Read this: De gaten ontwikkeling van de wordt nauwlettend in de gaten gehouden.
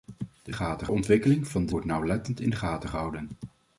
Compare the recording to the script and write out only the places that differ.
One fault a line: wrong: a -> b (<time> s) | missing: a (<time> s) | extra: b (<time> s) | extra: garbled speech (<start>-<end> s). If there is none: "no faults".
no faults